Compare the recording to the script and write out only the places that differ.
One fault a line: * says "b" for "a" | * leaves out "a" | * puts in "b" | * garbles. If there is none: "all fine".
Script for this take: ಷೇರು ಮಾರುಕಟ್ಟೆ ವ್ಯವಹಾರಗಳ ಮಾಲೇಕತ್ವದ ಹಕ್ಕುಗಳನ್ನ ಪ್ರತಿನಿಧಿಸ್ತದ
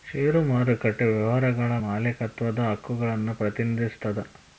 all fine